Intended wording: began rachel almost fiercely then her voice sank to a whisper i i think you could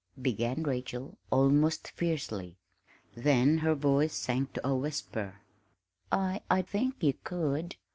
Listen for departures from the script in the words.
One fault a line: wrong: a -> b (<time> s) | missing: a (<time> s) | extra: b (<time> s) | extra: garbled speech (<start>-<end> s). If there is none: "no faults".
no faults